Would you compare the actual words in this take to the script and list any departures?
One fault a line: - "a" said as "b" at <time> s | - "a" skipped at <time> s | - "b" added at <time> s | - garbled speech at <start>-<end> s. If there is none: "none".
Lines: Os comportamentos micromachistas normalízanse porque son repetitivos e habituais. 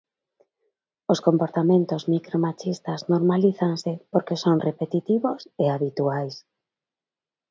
none